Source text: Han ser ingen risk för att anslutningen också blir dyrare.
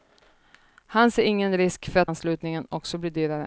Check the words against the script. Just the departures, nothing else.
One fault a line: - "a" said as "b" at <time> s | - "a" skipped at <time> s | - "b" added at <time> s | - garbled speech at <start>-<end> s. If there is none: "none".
none